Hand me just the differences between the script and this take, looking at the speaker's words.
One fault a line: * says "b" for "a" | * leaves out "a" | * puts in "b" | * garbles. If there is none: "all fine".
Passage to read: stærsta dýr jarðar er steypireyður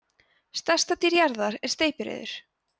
all fine